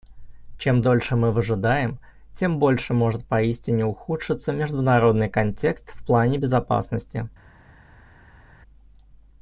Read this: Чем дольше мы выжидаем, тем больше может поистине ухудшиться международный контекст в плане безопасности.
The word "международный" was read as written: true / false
true